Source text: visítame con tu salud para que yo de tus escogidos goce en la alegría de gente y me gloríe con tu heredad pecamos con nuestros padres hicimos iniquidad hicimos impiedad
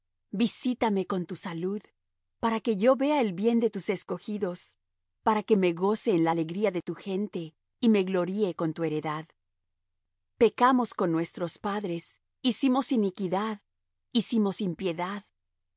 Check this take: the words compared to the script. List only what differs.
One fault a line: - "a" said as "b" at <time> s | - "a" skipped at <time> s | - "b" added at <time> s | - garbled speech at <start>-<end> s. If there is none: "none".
- "vea el bien" added at 3.0 s
- "para que me" added at 5.2 s
- "tu" added at 6.8 s